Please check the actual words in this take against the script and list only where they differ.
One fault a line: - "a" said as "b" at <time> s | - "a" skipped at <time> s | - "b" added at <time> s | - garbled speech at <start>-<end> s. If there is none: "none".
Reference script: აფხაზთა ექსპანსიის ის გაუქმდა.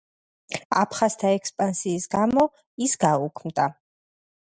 - "გამო" added at 2.1 s